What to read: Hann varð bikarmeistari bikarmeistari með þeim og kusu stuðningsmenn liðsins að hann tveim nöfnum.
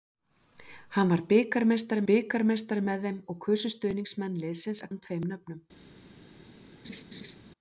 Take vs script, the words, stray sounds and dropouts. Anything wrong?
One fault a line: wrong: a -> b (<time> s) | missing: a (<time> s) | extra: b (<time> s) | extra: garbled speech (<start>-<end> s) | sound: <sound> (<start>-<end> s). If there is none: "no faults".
sound: laugh (6.8-7.4 s)